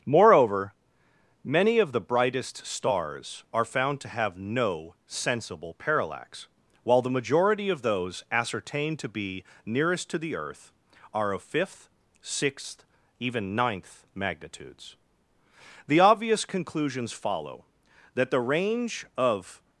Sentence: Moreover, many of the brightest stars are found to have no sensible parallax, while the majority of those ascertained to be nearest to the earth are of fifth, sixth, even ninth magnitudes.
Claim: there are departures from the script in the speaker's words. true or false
true